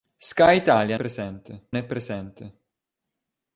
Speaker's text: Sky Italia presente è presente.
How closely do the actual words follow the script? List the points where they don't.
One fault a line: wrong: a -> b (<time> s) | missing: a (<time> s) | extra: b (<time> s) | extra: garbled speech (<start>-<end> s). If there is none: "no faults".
no faults